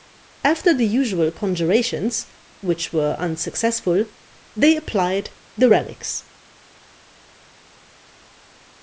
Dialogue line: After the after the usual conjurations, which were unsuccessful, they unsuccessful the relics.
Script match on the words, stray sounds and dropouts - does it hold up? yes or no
no